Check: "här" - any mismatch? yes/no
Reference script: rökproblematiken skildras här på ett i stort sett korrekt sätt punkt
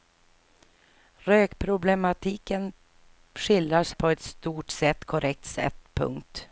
yes